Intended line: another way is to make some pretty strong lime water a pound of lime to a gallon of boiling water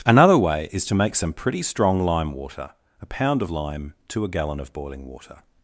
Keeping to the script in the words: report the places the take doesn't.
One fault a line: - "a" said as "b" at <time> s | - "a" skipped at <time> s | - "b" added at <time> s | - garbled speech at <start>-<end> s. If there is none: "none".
none